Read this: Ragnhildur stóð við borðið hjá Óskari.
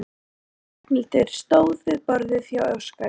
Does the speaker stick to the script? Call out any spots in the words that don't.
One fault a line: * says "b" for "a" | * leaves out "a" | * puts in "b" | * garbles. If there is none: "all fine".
all fine